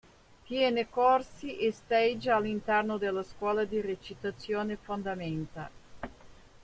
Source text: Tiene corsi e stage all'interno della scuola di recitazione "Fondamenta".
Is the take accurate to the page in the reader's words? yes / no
yes